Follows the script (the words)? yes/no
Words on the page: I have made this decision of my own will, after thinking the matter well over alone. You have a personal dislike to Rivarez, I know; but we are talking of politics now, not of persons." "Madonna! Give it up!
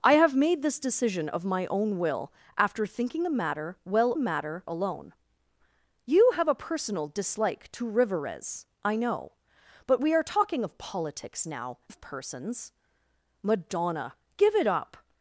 no